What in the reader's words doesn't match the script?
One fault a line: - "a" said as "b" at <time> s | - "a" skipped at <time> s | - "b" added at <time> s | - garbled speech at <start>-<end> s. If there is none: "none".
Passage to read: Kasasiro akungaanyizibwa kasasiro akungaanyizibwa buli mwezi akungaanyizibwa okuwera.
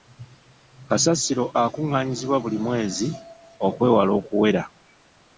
- "kasasiro akungaanyizibwa" skipped at 2.4 s
- "akungaanyizibwa" said as "okwewala" at 3.7 s